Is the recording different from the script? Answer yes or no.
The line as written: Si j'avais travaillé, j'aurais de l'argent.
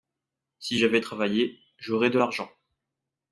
no